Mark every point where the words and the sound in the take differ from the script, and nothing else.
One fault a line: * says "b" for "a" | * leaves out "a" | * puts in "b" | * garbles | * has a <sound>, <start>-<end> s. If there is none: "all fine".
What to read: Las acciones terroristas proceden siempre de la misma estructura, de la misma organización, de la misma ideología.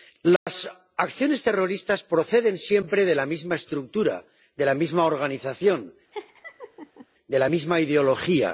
* has a dropout, 0.4-0.5 s
* has a laugh, 6.1-7.1 s